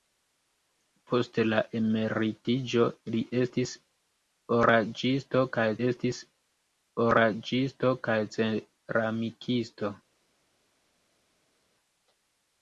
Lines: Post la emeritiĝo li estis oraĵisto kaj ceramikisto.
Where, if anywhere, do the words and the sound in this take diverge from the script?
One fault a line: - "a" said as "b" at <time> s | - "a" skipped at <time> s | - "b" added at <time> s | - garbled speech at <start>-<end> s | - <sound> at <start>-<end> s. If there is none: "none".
- "estis oraĵisto kaj" added at 5.9 s